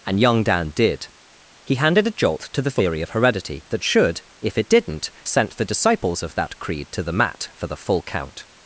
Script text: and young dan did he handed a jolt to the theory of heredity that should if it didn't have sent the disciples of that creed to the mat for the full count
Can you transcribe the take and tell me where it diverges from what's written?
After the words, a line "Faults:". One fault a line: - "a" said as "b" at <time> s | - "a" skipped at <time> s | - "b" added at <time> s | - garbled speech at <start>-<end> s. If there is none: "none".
and young dan did he handed a jolt to the theory of heredity that should if it didn't sent the disciples of that creed to the mat for the full count
Faults:
- "have" skipped at 5.1 s